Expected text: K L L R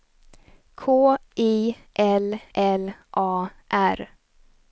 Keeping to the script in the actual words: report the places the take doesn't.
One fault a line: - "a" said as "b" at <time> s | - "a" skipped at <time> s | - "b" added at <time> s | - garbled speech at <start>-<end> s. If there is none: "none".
- "I" added at 1.4 s
- "A" added at 3.2 s